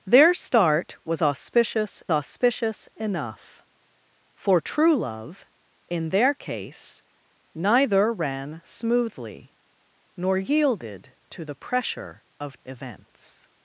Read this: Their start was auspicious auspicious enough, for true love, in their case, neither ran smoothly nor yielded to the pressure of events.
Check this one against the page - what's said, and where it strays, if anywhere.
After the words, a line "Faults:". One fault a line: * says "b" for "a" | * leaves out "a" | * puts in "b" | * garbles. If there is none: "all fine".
Their start was auspicious auspicious enough, for true love, in their case, neither ran smoothly nor yielded to the pressure of events.
Faults:
all fine